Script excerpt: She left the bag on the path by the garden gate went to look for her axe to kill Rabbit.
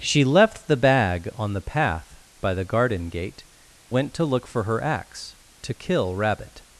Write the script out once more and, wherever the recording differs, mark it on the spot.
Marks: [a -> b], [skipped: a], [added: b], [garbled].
She left the bag on the path by the garden gate went to look for her axe to kill Rabbit.